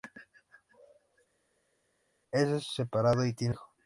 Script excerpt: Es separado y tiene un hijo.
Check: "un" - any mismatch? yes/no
yes